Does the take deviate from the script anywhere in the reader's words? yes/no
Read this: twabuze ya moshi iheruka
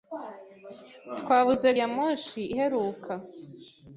no